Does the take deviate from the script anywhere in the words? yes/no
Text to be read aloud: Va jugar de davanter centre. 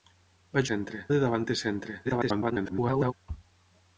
yes